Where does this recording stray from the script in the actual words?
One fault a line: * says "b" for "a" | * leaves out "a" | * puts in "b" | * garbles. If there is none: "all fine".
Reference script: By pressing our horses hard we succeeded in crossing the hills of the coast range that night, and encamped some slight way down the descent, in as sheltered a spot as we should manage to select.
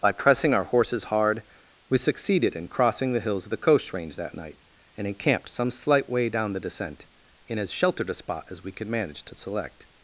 * says "could" for "should"